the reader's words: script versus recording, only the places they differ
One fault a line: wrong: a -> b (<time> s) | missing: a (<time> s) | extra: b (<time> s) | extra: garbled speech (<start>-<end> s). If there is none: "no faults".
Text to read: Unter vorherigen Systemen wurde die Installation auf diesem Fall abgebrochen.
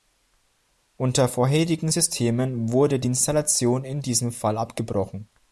wrong: auf -> in (3.9 s)